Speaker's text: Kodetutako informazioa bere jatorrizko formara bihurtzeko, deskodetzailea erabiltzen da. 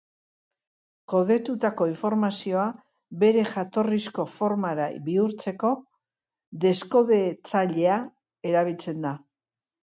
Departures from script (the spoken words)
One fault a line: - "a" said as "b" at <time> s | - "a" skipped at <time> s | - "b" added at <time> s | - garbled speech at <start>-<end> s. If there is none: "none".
none